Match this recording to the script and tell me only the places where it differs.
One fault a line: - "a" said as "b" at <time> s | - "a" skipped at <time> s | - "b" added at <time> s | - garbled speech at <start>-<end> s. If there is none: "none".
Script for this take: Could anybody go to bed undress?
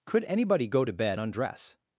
none